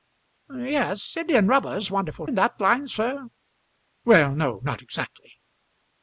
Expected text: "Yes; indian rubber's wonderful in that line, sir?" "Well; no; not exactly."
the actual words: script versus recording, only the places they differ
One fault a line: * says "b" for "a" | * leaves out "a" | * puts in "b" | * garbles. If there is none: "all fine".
all fine